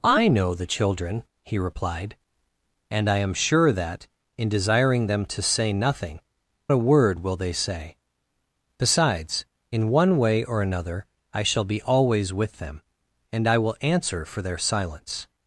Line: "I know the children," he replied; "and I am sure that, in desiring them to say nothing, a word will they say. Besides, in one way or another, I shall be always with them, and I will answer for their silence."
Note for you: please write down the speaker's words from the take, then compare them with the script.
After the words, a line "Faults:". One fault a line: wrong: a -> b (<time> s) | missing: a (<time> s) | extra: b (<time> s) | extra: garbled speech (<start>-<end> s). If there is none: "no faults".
"I know the children," he replied; "and I am sure that, in desiring them to say nothing, a word will they say. Besides, in one way or another, I shall be always with them, and I will answer for their silence."
Faults:
no faults